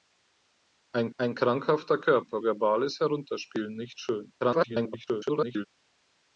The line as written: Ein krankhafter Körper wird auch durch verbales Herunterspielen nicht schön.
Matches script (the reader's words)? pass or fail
fail